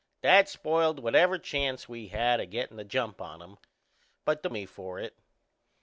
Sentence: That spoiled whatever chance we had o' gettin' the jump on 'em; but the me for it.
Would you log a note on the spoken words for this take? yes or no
no